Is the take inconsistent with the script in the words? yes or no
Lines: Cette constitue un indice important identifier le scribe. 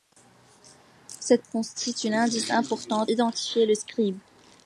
no